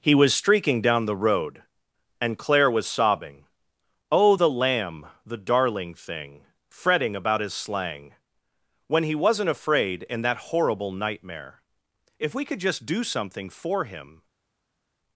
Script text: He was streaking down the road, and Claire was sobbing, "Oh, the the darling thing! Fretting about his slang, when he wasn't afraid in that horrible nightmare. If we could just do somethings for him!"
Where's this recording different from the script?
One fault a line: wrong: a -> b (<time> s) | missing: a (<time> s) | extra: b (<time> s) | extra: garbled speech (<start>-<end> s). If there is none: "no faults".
extra: lamb (4.5 s)
wrong: somethings -> something (13.0 s)